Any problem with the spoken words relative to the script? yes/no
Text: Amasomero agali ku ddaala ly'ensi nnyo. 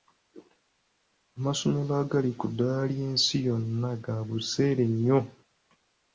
yes